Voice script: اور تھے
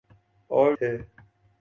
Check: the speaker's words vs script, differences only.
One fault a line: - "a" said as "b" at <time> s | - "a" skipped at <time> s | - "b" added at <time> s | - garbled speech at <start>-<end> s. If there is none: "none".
none